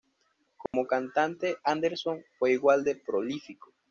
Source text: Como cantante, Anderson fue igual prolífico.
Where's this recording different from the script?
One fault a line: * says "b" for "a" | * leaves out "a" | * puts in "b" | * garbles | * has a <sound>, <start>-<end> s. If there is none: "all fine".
* has a dropout, 0.7-0.7 s
* puts in "de"